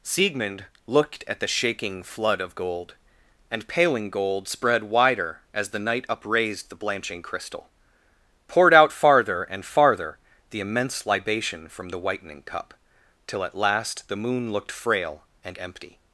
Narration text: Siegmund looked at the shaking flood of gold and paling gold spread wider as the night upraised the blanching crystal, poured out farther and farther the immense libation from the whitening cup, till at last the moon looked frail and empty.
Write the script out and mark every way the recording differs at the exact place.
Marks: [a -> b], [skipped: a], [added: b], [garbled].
Siegmund looked at the shaking flood of gold and paling gold spread wider as the night upraised the blanching crystal, poured out farther and farther the immense libation from the whitening cup, till at last the moon looked frail and empty.